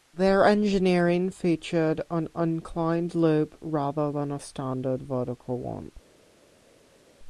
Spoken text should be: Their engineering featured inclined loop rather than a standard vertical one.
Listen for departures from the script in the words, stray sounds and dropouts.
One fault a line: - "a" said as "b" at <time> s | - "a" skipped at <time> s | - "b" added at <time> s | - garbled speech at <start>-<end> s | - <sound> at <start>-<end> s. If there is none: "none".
- "an" added at 2.1 s